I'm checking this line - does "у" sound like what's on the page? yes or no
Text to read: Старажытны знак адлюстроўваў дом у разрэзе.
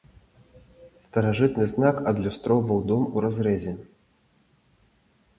yes